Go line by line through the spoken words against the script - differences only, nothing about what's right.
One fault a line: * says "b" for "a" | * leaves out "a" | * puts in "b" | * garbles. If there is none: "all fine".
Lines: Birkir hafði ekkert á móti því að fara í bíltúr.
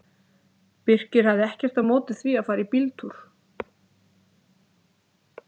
all fine